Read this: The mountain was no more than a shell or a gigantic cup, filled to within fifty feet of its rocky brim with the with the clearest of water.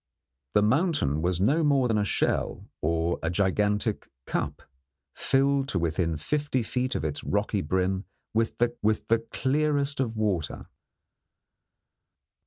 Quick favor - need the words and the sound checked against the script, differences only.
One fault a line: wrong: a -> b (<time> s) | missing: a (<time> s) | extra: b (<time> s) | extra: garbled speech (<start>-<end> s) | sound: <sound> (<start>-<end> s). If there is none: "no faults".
no faults